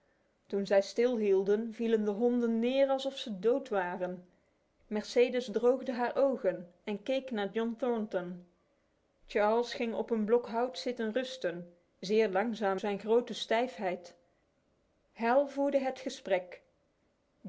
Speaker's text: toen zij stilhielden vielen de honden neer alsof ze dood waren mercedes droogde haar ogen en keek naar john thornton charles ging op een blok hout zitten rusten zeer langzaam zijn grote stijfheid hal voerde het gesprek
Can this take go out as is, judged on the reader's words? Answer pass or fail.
pass